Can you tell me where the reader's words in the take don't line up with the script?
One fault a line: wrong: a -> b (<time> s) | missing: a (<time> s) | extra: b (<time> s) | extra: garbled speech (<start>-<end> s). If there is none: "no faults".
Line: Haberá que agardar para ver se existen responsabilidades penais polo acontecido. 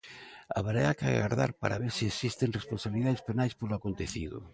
no faults